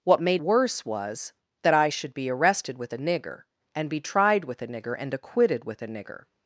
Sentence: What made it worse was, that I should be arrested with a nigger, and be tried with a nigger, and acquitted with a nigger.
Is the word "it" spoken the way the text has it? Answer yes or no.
no